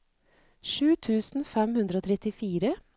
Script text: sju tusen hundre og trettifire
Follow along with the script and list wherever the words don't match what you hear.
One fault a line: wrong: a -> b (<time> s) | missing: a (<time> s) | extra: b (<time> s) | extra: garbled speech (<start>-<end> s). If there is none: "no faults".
extra: fem (1.5 s)